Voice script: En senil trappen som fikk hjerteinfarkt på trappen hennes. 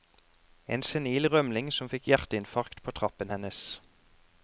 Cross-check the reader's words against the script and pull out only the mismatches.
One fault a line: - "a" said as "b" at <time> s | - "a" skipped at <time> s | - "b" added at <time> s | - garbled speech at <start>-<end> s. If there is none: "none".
- "trappen" said as "rømling" at 1.3 s